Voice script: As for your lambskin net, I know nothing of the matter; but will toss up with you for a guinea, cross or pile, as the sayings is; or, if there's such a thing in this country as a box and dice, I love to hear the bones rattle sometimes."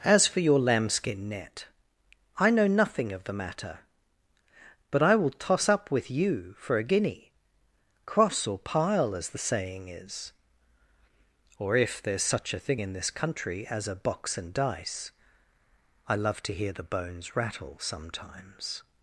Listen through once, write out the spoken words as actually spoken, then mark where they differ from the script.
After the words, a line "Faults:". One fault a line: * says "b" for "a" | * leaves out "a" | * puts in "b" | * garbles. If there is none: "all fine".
As for your lambskin net, I know nothing of the matter; but I will toss up with you for a guinea, cross or pile, as the saying is; or, if there's such a thing in this country as a box and dice, I love to hear the bones rattle sometimes."
Faults:
* puts in "I"
* says "saying" for "sayings"